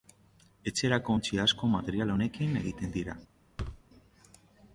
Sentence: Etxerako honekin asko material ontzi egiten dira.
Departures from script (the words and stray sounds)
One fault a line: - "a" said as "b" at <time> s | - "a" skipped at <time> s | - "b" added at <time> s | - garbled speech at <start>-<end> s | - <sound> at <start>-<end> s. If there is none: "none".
- "honekin" said as "ontzi" at 1.1 s
- "ontzi" said as "honekin" at 2.1 s
- thud at 3.6-3.8 s